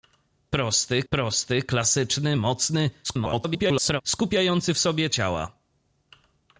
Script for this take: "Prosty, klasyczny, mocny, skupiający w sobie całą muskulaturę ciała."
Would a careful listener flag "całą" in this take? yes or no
yes